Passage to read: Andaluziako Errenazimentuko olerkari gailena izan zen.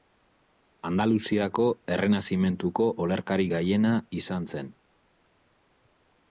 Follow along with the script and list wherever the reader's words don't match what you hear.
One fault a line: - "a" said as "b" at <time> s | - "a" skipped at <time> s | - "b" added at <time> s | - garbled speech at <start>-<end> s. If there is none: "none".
none